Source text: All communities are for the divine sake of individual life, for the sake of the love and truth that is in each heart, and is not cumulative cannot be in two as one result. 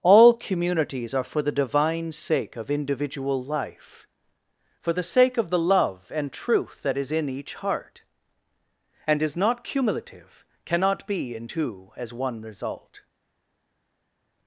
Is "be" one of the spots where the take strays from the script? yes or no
no